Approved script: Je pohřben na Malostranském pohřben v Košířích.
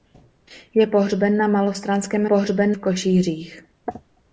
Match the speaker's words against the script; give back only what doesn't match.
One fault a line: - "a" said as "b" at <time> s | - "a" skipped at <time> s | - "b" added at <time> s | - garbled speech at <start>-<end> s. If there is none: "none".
none